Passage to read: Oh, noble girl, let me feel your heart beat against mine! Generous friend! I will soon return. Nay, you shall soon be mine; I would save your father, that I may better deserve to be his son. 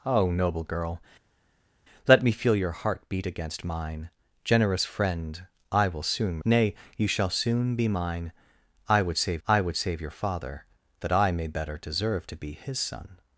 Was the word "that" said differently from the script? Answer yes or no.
no